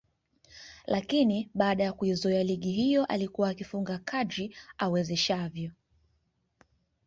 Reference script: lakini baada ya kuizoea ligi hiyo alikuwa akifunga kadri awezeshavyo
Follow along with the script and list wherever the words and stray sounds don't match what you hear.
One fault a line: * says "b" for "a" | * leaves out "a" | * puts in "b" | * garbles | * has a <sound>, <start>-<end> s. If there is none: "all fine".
all fine